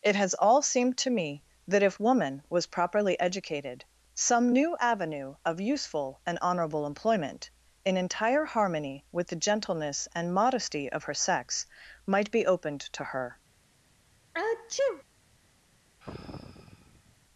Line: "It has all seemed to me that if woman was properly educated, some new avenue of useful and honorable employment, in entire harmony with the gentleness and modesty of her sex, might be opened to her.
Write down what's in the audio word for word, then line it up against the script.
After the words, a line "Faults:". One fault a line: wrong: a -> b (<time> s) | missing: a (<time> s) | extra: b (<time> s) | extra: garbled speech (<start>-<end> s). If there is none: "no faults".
"It has all seemed to me that if woman was properly educated, some new avenue of useful and honorable employment, in entire harmony with the gentleness and modesty of her sex, might be opened to her.
Faults:
no faults